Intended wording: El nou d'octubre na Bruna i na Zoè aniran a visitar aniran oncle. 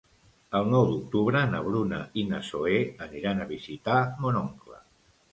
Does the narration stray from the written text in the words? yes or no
yes